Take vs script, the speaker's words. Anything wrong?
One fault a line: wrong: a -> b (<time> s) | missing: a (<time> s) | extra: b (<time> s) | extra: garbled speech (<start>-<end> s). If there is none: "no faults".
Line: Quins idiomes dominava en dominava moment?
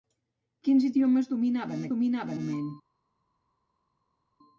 no faults